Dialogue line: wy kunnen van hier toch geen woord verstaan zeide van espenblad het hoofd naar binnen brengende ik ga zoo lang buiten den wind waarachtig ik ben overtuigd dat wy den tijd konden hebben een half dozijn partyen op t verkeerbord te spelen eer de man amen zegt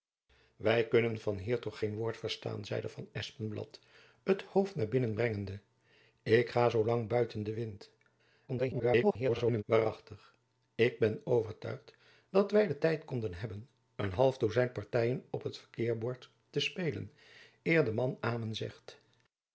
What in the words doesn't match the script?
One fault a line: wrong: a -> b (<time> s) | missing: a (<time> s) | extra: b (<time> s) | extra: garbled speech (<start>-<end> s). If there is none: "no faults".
extra: garbled speech (8.5-9.6 s)